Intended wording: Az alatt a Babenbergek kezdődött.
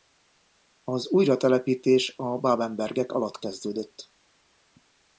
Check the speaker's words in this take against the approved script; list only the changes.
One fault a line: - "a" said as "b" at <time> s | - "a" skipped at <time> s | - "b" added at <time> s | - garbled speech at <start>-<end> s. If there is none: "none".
- "alatt" said as "újratelepítés" at 1.1 s
- "alatt" added at 3.1 s